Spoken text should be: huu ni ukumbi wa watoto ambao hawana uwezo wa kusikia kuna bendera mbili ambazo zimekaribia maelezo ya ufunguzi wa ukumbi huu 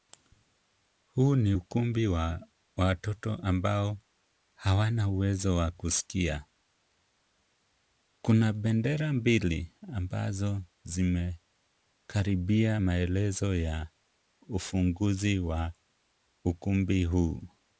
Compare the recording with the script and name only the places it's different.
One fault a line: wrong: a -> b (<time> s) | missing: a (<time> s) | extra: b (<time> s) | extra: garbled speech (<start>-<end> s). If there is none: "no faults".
no faults